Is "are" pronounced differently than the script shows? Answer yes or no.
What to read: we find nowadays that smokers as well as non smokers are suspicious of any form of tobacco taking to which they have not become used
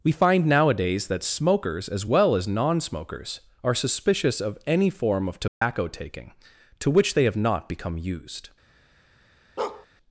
no